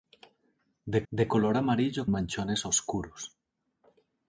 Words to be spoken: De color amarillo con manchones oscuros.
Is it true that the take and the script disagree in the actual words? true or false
true